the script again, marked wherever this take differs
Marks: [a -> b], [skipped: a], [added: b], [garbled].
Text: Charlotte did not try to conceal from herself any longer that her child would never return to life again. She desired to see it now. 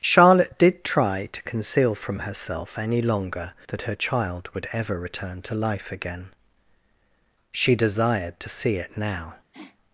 Charlotte did [skipped: not] try to conceal from herself any longer that her child would [never -> ever] return to life again. She desired to see it now.